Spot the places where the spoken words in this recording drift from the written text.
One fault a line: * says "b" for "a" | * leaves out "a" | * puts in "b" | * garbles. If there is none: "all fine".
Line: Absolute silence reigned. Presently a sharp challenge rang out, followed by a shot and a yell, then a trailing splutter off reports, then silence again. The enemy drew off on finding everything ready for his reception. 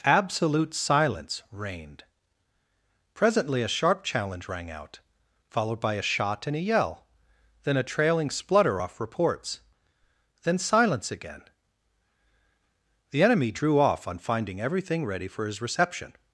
all fine